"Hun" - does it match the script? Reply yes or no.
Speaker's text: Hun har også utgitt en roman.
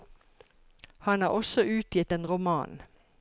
no